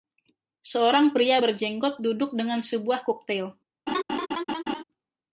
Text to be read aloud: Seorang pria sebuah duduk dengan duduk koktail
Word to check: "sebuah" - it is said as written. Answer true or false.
false